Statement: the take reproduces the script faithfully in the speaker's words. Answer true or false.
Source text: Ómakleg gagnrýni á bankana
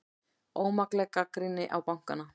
true